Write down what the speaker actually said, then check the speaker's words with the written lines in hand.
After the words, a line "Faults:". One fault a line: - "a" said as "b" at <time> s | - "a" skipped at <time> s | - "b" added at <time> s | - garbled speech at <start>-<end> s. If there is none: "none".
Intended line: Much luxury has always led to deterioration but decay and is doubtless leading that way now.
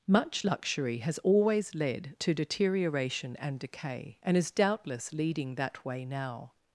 Much luxury has always led to deterioration and decay and is doubtless leading that way now.
Faults:
- "but" said as "and" at 3.4 s